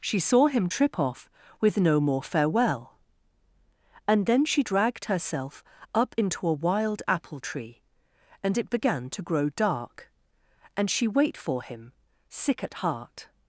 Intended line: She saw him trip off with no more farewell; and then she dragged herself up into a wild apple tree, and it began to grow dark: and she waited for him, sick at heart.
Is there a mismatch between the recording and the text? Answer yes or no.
yes